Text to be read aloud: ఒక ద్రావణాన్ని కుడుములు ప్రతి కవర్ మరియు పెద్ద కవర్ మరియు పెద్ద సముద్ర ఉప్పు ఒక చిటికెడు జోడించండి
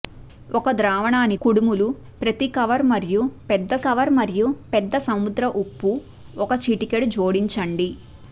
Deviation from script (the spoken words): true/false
false